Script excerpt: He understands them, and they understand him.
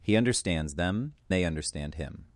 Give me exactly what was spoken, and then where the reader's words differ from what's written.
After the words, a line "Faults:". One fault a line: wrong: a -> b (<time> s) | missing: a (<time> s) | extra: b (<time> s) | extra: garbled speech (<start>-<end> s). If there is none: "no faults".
He understands them, they understand him.
Faults:
missing: and (1.1 s)